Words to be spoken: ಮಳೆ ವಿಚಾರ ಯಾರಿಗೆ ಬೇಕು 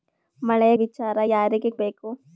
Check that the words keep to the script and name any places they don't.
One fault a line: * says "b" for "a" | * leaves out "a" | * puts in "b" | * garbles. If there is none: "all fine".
all fine